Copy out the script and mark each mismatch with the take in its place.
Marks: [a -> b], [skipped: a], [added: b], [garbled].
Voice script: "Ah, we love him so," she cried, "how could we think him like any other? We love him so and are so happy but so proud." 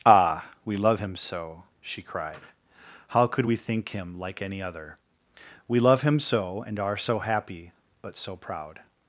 "Ah, we love him so," she cried, "how could we think him like any other? We love him so and are so happy but so proud."